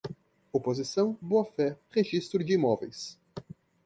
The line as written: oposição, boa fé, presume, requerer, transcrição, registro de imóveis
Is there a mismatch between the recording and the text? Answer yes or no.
yes